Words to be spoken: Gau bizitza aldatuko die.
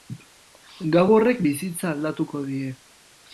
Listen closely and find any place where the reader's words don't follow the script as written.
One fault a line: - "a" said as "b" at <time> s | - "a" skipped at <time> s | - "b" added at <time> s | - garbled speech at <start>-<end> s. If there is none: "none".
- "horrek" added at 1.2 s